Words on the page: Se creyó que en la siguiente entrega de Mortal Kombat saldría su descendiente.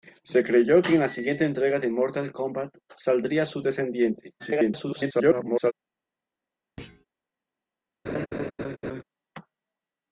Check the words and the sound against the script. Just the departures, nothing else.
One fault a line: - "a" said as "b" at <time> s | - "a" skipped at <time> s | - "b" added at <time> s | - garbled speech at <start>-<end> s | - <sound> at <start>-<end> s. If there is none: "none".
- garbled speech at 4.4-5.7 s
- thud at 6.8-7.1 s
- laugh at 8.1-9.0 s